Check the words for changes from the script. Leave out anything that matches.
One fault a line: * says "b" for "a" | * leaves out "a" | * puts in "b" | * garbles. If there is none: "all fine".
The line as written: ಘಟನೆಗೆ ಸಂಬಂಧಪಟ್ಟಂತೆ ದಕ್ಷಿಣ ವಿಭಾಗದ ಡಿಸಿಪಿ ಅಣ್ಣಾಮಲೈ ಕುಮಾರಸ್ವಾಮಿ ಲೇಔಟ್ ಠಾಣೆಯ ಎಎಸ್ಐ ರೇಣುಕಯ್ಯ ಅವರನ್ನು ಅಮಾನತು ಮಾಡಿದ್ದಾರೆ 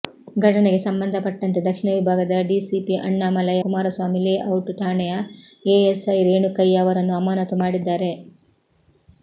all fine